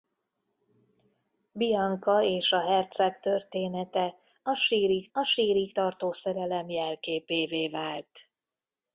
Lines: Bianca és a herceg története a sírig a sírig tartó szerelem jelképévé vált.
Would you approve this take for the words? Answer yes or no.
yes